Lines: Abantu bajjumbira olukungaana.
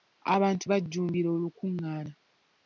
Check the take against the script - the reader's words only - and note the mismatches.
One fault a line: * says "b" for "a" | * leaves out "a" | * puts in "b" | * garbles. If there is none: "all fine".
all fine